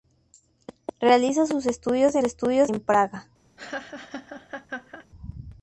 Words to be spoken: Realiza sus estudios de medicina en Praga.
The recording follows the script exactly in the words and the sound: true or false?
false